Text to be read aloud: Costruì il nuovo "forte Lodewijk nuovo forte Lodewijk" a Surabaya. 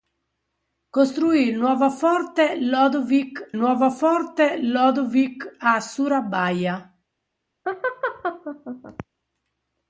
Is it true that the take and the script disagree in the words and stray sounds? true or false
true